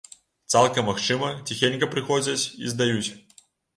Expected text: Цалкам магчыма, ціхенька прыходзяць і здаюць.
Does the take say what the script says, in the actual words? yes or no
yes